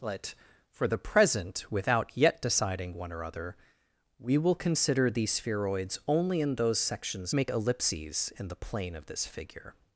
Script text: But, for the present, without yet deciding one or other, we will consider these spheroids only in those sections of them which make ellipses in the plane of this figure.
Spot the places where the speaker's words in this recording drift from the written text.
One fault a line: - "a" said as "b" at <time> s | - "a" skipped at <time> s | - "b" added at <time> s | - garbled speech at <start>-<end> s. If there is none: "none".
- "of them which" skipped at 7.3 s